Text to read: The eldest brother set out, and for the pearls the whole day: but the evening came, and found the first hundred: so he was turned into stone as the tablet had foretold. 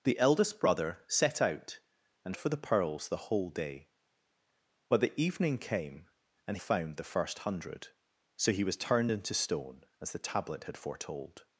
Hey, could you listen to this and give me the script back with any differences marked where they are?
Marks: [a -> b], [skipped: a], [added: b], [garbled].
The eldest brother set out, and for the pearls the whole day: but the evening came, and found the first hundred: so he was turned into stone as the tablet had foretold.